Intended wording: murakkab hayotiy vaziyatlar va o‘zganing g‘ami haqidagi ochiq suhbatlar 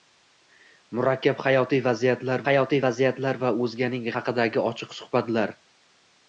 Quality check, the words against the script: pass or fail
fail